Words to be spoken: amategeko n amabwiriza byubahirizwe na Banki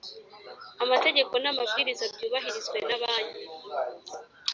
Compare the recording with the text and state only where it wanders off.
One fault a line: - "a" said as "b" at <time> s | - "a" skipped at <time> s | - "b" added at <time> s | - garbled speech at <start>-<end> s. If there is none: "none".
none